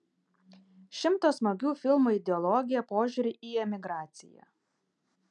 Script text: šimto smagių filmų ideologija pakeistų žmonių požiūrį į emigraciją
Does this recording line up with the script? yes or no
no